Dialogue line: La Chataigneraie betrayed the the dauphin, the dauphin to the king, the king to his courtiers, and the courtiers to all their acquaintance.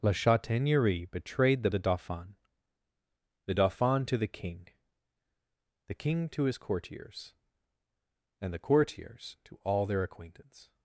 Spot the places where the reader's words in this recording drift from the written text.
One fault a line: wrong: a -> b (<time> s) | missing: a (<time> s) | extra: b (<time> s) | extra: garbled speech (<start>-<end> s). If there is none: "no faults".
no faults